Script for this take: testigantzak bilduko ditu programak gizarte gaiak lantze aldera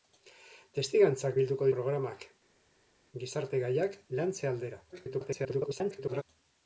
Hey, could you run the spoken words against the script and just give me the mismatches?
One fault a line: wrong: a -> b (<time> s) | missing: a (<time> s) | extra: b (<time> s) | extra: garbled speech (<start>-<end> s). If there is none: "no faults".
missing: ditu (1.7 s)
extra: garbled speech (4.9-6.2 s)